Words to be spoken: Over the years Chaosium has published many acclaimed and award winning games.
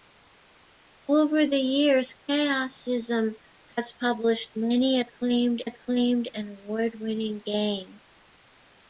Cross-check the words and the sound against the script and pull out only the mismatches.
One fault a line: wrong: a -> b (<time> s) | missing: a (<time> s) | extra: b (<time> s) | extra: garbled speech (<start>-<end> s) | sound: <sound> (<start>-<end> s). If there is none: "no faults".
extra: acclaimed (5.6 s)